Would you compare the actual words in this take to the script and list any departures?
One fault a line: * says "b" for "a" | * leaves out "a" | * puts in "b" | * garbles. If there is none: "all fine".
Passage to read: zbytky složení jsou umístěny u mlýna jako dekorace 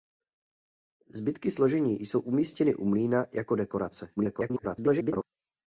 * garbles